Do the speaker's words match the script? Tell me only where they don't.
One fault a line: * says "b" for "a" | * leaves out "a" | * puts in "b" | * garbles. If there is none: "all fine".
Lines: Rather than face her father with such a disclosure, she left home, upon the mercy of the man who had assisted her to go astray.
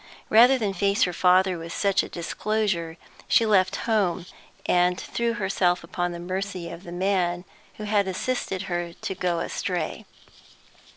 * puts in "and threw herself"